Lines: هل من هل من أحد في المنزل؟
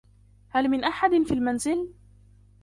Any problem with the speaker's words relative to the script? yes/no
yes